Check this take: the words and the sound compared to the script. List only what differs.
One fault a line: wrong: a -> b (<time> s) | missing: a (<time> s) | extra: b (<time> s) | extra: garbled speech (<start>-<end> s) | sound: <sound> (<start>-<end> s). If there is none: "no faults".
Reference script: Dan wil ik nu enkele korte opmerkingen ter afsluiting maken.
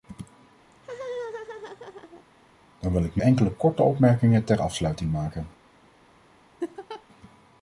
sound: laugh (0.7-2.2 s)
sound: laugh (6.6-7.0 s)